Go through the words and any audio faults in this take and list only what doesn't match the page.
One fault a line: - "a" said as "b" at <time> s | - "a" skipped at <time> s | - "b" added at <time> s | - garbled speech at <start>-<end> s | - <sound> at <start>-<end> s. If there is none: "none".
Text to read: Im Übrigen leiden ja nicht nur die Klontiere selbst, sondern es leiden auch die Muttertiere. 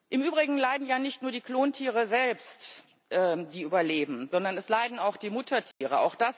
- "die überleben" added at 3.1 s
- dropout at 5.7-5.8 s